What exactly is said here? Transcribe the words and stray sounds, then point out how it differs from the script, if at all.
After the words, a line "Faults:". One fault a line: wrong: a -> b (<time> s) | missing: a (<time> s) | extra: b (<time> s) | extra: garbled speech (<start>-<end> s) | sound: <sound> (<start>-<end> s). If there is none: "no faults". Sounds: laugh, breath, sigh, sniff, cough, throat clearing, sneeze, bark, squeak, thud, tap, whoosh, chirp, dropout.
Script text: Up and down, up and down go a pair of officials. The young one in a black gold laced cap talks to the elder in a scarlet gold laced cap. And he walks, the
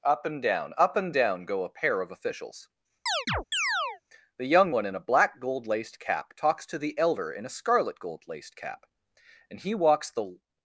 Up and down, up and down go a pair of officials. The young one in a black gold laced cap talks to the elder in a scarlet gold laced cap. And he walks, the
Faults:
sound: chirp (3.1-4.0 s)